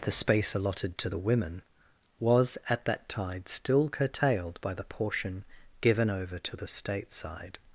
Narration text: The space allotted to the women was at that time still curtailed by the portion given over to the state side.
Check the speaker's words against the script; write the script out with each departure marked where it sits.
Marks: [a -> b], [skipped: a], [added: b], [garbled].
The space allotted to the women was at that [time -> tide] still curtailed by the portion given over to the state side.